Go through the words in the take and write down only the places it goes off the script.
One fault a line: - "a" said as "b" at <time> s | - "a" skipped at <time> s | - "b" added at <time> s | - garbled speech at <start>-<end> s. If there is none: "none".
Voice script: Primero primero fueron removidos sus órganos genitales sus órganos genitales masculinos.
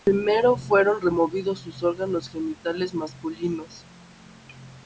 - "primero" skipped at 0.6 s
- "sus órganos genitales" skipped at 3.0 s